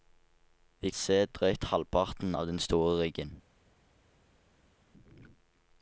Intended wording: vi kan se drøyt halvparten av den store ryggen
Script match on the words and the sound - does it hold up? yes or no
no